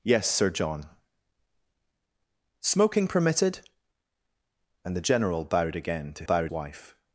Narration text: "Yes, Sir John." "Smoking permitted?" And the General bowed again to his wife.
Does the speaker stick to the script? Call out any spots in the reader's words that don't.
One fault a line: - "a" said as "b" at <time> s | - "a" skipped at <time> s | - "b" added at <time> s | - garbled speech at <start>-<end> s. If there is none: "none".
- "his" said as "bowed" at 6.2 s